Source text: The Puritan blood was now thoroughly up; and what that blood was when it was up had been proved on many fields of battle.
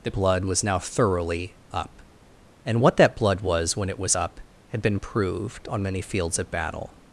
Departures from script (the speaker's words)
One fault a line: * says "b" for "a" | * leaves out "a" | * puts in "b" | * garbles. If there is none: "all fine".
* leaves out "Puritan"